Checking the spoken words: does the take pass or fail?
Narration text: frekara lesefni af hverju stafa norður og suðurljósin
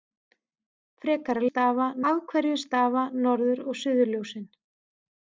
fail